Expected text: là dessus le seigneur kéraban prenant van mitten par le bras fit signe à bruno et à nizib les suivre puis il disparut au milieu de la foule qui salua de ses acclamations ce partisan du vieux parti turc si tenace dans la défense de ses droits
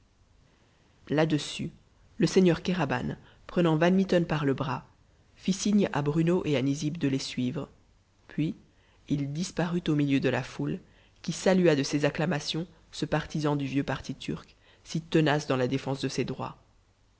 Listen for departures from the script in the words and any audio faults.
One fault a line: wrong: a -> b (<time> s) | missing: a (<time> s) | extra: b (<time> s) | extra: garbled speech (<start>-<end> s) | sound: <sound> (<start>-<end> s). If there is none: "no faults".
extra: de (7.0 s)